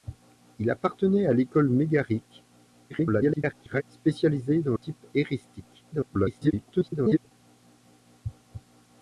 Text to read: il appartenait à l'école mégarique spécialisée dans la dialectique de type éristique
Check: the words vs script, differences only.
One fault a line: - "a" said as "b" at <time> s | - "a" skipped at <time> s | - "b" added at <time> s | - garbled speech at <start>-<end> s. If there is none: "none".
- garbled speech at 2.9-3.8 s
- "la dialectique de" skipped at 4.8 s
- garbled speech at 5.9-7.3 s